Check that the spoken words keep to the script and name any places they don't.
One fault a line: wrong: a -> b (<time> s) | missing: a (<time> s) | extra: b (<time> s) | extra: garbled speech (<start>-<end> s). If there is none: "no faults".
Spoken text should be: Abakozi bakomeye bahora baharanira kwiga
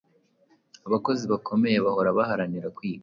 no faults